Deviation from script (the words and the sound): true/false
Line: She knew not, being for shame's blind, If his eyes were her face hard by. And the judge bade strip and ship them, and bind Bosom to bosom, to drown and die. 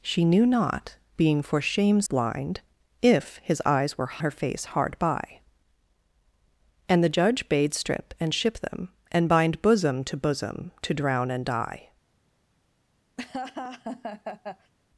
true